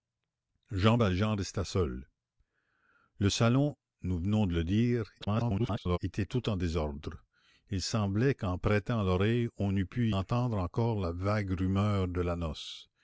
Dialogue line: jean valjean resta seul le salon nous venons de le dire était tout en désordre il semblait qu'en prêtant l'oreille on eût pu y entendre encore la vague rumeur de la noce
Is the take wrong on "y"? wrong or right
wrong